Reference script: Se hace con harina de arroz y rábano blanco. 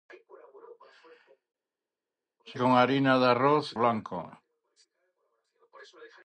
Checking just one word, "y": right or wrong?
wrong